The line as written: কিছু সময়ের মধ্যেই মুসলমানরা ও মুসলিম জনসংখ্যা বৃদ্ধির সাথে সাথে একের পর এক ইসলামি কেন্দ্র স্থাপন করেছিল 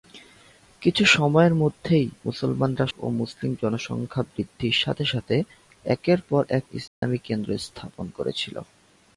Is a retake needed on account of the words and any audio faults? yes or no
yes